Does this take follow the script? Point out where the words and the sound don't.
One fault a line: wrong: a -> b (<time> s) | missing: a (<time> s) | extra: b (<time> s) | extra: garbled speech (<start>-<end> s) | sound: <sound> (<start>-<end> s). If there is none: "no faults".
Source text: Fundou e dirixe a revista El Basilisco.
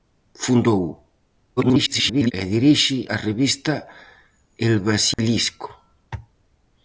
extra: garbled speech (1.6-2.3 s)
sound: dropout (5.1-5.2 s)